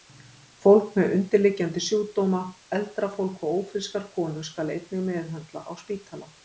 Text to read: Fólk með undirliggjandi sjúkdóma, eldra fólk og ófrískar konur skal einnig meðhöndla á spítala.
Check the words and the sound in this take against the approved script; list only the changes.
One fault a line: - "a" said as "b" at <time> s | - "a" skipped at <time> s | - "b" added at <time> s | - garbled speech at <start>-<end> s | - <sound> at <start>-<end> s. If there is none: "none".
none